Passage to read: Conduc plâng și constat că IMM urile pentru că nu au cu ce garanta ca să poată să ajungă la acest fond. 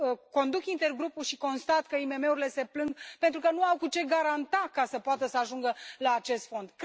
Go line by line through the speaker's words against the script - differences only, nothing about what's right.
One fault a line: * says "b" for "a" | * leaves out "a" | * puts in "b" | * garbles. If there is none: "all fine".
* says "intergrupul" for "plâng"
* puts in "se plâng"